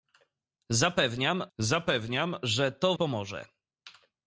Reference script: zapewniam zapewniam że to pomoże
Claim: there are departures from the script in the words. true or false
false